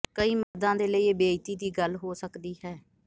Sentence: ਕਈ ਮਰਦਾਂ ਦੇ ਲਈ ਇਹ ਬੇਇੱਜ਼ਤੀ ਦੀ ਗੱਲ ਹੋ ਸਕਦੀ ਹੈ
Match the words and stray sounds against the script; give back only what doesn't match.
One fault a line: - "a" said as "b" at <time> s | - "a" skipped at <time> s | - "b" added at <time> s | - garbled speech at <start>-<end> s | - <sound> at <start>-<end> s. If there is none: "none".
- dropout at 0.4-0.5 s